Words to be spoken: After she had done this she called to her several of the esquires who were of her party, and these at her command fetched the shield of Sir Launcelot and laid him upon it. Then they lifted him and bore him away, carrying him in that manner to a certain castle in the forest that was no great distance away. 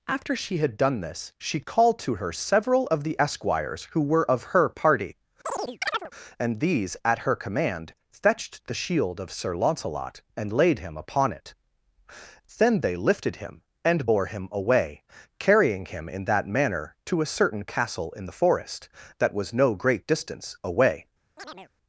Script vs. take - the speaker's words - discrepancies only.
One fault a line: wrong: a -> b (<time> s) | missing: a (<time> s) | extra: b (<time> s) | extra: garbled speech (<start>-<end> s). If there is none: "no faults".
no faults